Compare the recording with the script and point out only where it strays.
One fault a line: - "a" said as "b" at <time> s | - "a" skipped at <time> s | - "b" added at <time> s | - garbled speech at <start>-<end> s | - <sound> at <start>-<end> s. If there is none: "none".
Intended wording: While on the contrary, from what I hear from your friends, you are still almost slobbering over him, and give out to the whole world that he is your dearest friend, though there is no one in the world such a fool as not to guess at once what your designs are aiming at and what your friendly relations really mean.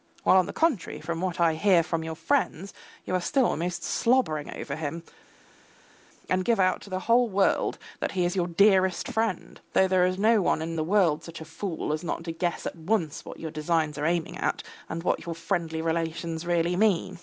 none